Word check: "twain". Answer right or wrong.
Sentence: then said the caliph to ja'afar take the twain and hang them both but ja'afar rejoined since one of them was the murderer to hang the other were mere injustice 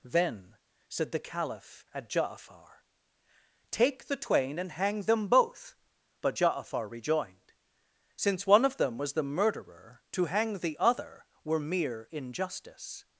right